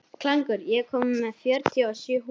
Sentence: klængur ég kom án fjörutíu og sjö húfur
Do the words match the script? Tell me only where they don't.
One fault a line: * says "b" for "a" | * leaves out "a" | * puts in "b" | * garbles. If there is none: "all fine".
* says "með" for "án"